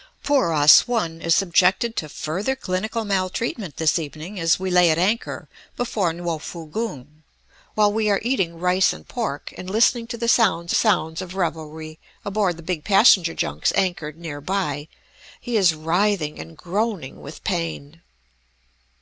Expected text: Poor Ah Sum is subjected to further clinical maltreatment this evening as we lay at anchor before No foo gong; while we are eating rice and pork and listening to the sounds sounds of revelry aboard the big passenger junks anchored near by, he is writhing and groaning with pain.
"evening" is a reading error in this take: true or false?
false